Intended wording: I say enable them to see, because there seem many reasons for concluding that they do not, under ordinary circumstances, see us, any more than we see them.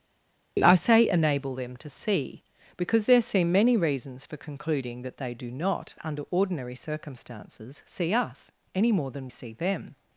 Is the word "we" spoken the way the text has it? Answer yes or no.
no